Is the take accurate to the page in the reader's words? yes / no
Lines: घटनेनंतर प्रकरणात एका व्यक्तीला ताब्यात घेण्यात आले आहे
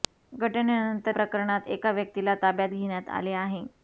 yes